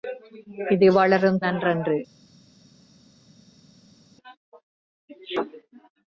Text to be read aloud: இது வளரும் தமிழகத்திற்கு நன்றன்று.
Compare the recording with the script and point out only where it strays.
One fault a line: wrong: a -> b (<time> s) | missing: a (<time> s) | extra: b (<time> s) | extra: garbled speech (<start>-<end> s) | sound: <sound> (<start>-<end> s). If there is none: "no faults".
missing: தமிழகத்திற்கு (1.4 s)